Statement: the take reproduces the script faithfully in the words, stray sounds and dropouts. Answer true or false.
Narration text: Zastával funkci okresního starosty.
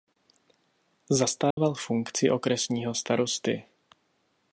false